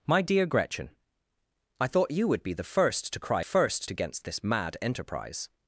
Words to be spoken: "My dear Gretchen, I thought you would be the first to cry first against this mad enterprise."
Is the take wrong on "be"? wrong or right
right